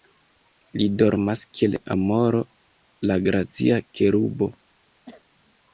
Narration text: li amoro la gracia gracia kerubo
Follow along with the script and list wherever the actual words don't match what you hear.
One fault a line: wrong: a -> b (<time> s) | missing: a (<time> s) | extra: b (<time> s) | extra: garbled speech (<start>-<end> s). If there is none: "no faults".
extra: dormas kiel (1.0 s)
missing: gracia (3.8 s)